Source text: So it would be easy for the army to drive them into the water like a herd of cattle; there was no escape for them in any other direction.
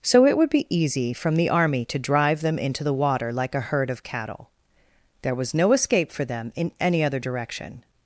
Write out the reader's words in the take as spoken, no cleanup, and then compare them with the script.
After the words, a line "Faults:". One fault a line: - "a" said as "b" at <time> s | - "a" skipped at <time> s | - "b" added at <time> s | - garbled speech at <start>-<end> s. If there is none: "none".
So it would be easy from the army to drive them into the water like a herd of cattle; there was no escape for them in any other direction.
Faults:
- "for" said as "from" at 1.1 s